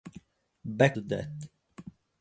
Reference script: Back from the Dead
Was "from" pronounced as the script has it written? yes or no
no